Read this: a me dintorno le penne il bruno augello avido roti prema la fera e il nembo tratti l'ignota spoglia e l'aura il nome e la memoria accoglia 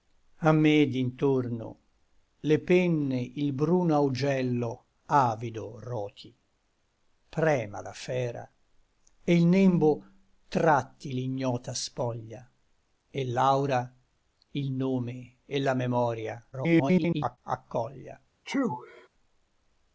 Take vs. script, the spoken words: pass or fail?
fail